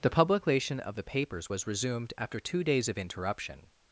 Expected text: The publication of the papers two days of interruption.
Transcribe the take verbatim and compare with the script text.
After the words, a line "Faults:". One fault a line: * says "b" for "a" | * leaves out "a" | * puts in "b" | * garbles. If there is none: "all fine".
The publication of the papers was resumed after two days of interruption.
Faults:
* puts in "was resumed after"